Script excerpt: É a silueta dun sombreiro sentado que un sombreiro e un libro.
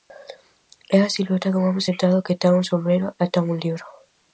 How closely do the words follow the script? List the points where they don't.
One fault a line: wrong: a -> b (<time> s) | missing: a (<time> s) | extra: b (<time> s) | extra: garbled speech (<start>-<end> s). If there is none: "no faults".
wrong: sombreiro -> home (1.7 s)
extra: ten (2.4 s)
extra: ten (3.3 s)